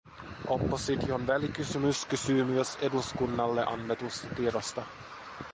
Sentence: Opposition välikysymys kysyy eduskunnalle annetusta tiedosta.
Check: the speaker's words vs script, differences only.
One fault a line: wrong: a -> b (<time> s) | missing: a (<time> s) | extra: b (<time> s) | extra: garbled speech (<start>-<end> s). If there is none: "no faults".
extra: myös (2.4 s)